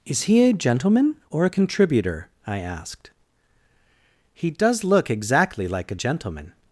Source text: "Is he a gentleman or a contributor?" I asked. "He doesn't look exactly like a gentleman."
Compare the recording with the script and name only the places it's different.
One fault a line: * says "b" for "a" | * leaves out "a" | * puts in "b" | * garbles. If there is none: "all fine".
* says "does" for "doesn't"